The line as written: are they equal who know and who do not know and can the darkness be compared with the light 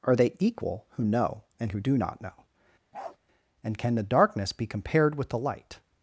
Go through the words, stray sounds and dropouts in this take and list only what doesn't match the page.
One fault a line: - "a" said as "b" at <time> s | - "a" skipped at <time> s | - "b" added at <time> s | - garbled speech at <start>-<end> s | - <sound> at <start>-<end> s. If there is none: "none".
- bark at 2.9-3.2 s